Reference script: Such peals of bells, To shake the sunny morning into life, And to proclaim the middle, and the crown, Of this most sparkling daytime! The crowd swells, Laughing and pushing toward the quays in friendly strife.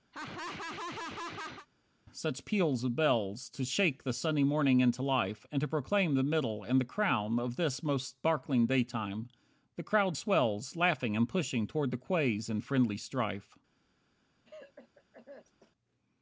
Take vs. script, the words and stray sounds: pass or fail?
fail